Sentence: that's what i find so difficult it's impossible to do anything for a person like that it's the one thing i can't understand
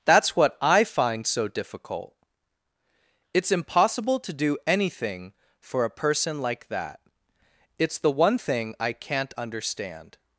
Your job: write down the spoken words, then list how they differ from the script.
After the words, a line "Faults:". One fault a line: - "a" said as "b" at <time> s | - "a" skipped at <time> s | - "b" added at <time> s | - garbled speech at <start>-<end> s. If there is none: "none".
that's what i find so difficult it's impossible to do anything for a person like that it's the one thing i can't understand
Faults:
none